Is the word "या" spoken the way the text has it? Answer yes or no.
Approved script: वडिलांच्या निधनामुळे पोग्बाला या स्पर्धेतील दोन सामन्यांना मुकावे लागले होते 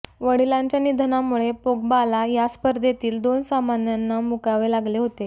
yes